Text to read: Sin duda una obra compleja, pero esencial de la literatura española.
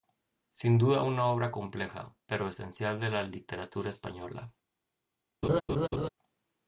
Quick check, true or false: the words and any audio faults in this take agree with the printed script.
false